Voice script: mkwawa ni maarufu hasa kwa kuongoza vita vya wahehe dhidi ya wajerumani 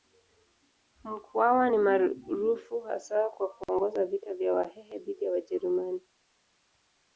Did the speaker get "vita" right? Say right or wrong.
right